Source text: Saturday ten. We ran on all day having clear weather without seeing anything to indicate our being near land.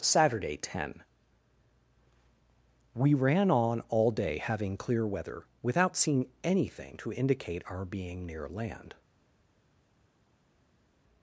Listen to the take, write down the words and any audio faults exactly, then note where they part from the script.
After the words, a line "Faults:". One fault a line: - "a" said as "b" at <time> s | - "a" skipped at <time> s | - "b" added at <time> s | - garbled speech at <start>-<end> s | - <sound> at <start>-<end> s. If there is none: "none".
Saturday ten. We ran on all day having clear weather without seeing anything to indicate our being near land.
Faults:
none